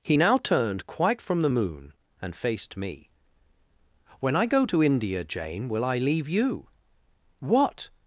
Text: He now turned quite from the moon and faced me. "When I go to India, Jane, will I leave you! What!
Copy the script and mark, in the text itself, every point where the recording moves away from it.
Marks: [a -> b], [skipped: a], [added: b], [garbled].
He now turned quite from the moon and faced me. "When I go to India, Jane, will I leave you! What!